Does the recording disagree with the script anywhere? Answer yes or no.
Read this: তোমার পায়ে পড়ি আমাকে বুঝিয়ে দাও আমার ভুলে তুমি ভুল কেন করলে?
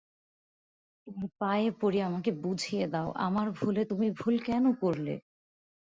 no